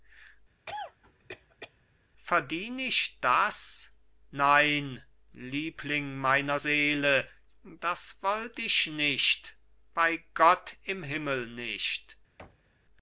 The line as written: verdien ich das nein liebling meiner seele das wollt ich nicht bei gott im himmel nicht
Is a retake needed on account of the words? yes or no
no